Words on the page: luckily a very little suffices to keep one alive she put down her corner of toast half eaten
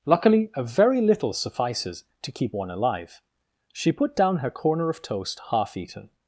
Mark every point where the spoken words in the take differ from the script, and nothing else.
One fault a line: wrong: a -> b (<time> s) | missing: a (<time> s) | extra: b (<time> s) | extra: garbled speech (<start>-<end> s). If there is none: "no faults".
no faults